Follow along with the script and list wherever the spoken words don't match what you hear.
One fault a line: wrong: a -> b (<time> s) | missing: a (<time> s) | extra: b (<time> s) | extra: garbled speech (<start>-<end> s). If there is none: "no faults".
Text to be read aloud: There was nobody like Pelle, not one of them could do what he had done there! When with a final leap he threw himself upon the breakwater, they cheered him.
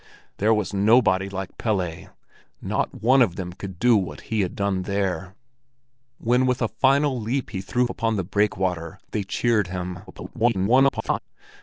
missing: himself (7.9 s)
extra: garbled speech (10.1-11.2 s)